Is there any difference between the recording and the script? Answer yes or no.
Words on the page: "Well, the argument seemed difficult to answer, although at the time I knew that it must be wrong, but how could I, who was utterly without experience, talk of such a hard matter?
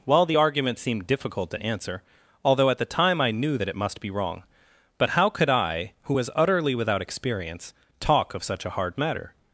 no